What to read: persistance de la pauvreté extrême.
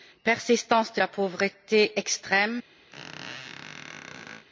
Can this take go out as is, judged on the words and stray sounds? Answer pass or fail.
fail